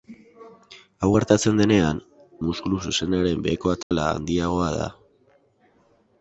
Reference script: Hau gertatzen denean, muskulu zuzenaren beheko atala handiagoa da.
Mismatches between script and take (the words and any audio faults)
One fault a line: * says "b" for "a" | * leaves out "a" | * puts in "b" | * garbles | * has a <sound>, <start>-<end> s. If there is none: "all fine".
* has a dropout, 3.8-3.9 s